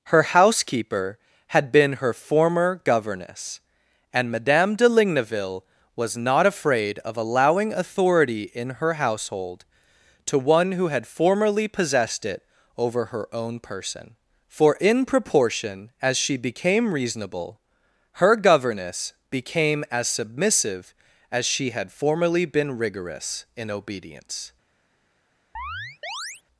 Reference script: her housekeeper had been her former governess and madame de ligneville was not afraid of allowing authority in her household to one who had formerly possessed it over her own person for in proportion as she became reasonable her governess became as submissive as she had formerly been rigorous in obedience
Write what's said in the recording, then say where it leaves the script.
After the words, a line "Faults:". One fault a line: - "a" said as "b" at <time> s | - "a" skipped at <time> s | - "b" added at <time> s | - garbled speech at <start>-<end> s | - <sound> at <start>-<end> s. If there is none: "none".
her housekeeper had been her former governess and madame de ligneville was not afraid of allowing authority in her household to one who had formerly possessed it over her own person for in proportion as she became reasonable her governess became as submissive as she had formerly been rigorous in obedience
Faults:
- chirp at 25.6-26.4 s